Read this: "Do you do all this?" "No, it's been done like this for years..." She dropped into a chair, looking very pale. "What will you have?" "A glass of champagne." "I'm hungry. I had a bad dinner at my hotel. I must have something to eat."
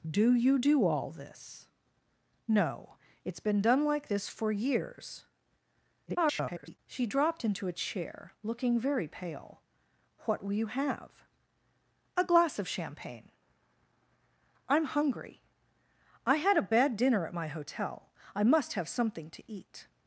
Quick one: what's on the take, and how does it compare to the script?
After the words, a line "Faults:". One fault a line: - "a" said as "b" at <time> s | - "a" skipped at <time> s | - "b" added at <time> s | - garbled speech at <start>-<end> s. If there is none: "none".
"Do you do all this?" "No, it's been done like this for years..." [garbled] She dropped into a chair, looking very pale. "What will you have?" "A glass of champagne." "I'm hungry. I had a bad dinner at my hotel. I must have something to eat."
Faults:
- garbled speech at 6.1-6.8 s